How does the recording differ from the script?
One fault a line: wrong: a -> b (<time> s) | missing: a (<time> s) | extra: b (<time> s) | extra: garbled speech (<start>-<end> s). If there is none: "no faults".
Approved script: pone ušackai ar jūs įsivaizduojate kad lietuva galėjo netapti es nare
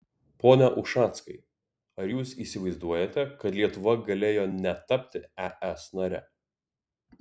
no faults